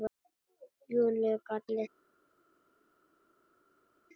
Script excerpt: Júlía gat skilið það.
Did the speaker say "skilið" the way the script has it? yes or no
no